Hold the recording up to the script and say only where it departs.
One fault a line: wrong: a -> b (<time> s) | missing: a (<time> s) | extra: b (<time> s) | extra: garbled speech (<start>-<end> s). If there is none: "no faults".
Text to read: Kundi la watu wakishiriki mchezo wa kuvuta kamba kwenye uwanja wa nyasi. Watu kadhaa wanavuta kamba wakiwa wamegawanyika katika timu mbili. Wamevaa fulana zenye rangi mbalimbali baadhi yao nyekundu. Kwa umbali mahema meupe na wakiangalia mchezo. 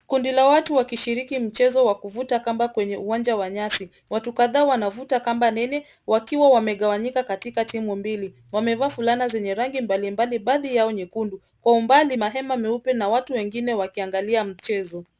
extra: nene (5.5 s)
extra: watu wengine (13.1 s)